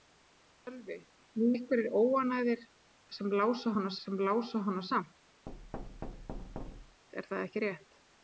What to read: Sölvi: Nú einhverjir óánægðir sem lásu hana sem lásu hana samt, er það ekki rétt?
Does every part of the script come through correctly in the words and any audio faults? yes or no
no